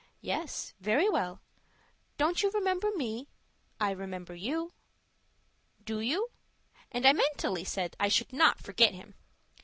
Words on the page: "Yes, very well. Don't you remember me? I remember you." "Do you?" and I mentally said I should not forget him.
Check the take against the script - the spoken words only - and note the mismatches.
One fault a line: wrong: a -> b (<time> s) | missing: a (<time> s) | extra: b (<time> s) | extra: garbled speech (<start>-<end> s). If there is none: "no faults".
no faults